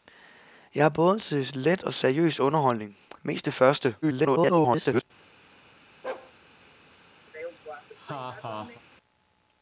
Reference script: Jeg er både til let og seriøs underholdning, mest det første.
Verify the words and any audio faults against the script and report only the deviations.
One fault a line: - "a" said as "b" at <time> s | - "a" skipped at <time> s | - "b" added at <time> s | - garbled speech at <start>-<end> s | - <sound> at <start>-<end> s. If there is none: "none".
- garbled speech at 4.0-5.0 s
- bark at 6.0-6.3 s
- laugh at 7.3-8.8 s